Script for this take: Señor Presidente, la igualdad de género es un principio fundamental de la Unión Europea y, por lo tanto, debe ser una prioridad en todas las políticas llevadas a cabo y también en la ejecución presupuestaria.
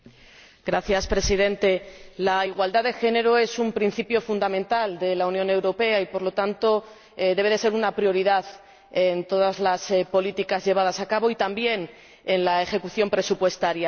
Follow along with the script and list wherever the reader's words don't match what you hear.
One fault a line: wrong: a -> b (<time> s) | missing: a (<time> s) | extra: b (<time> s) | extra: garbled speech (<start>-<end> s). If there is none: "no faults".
no faults